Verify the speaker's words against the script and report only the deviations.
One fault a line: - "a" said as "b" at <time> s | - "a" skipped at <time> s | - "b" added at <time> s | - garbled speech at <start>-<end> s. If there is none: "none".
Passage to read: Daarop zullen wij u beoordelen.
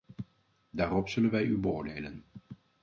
none